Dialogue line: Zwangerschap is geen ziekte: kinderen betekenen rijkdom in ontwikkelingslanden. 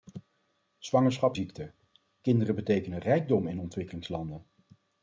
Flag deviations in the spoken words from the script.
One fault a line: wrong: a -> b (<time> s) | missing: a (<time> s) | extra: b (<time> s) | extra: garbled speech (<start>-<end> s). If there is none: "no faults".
missing: is geen (1.4 s)